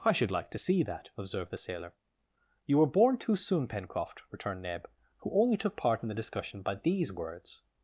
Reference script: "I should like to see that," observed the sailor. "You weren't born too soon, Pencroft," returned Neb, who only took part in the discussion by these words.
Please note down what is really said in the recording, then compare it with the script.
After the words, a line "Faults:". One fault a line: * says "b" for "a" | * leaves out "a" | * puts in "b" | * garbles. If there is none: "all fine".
"I should like to see that," observed the sailor. "You were born too soon, Pencroft," returned Neb, who only took part in the discussion by these words.
Faults:
* says "were" for "weren't"